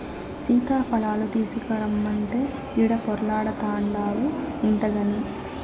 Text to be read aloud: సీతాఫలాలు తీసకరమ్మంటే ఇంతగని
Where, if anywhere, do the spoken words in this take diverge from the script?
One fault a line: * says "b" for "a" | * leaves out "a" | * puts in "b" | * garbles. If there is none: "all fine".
* puts in "ఈడ పొర్లాడతాన్డావు"